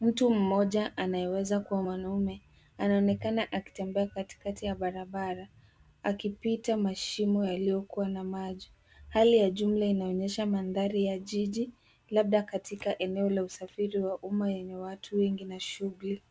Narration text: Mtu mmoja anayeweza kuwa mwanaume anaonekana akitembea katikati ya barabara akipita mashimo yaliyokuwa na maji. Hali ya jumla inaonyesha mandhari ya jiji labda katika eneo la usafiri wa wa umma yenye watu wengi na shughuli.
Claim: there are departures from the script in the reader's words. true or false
true